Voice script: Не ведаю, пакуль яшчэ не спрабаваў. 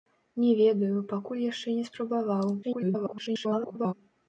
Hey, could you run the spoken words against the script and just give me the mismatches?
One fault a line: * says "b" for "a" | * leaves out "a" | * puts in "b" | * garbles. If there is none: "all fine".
* garbles